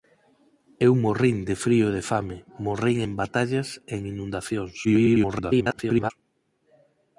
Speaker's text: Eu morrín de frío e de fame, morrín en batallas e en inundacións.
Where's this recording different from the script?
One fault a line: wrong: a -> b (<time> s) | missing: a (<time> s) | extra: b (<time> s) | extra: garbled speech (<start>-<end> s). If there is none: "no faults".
extra: garbled speech (4.8-6.1 s)